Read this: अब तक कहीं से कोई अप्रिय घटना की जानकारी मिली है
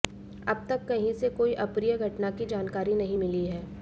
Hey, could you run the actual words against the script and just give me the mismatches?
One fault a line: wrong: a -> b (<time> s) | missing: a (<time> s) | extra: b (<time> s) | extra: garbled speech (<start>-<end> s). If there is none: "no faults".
extra: नहीं (3.0 s)